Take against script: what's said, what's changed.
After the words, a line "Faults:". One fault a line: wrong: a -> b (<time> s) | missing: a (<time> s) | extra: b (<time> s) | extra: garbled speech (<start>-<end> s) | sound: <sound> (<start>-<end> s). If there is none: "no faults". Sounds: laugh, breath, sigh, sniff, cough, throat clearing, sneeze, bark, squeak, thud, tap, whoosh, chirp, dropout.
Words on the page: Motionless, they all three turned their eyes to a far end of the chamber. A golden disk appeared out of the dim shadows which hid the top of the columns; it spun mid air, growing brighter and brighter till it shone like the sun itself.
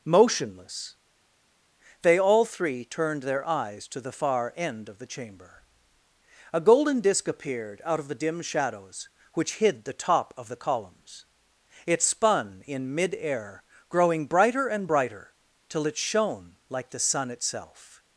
Motionless, they all three turned their eyes to the far end of the chamber. A golden disk appeared out of the dim shadows which hid the top of the columns; it spun in mid air, growing brighter and brighter till it shone like the sun itself.
Faults:
wrong: a -> the (4.0 s)
extra: in (12.7 s)